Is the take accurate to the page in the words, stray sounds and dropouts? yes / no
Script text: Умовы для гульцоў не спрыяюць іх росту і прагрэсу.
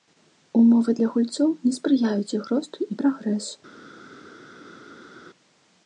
yes